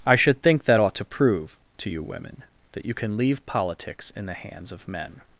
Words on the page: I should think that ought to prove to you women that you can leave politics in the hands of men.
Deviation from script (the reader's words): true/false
false